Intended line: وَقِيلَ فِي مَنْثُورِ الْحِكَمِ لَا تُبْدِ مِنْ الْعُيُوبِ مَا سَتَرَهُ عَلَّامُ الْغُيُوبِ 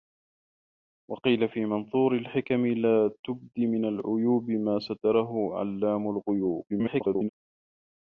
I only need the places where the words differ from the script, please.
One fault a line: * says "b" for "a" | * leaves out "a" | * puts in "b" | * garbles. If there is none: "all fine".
* garbles